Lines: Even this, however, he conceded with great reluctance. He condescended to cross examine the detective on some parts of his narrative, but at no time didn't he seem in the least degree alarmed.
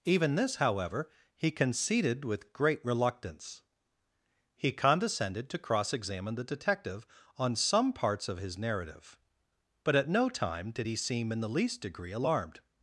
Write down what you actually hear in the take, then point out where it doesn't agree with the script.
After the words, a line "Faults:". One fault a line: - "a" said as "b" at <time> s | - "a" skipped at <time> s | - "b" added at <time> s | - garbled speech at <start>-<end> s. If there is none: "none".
Even this, however, he conceded with great reluctance. He condescended to cross examine the detective on some parts of his narrative, but at no time did he seem in the least degree alarmed.
Faults:
- "didn't" said as "did" at 10.7 s